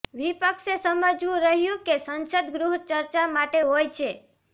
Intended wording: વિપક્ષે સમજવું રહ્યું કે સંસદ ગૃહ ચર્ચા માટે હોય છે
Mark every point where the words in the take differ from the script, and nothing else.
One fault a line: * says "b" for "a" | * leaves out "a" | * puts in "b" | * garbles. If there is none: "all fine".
all fine